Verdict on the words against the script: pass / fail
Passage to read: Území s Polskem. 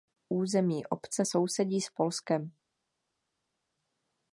fail